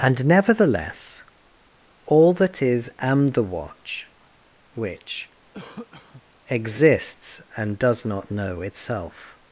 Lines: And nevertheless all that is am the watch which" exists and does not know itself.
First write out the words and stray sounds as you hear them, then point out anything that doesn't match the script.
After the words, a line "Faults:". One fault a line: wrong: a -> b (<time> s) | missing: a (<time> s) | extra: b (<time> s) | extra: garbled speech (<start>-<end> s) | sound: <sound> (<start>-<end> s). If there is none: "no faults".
And nevertheless all that is am the watch which" exists and does not know itself.
Faults:
sound: cough (5.5-6.2 s)